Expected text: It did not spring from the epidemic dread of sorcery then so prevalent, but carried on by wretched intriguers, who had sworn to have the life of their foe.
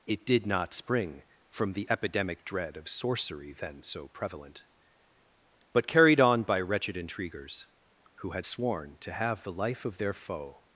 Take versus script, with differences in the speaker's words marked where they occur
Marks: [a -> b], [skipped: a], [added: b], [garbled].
It did not spring from the epidemic dread of sorcery then so prevalent, but carried on by wretched intriguers, who had sworn to have the life of their foe.